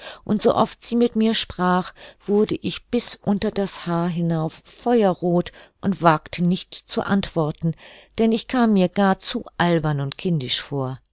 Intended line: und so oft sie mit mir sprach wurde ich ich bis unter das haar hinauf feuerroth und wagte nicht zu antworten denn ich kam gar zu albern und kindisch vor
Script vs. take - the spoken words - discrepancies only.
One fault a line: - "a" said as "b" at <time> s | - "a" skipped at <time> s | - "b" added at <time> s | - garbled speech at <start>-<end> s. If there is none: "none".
- "ich" skipped at 2.8 s
- "mir" added at 8.7 s